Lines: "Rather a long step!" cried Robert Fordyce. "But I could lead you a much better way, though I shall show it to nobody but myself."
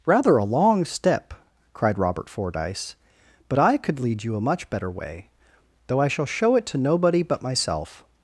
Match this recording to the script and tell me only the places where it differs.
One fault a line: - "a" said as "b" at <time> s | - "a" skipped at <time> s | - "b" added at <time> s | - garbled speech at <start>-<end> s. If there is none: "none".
none